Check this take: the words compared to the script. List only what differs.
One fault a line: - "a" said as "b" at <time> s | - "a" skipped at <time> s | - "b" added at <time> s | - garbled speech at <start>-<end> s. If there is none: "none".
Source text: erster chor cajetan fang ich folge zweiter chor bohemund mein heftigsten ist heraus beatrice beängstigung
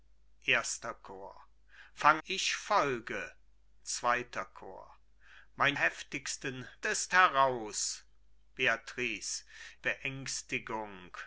none